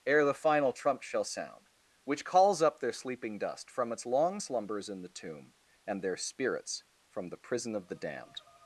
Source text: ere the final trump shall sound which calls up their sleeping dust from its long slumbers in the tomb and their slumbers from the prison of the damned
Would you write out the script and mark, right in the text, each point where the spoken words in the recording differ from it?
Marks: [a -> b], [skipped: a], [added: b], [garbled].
ere the final trump shall sound which calls up their sleeping dust from its long slumbers in the tomb and their [slumbers -> spirits] from the prison of the damned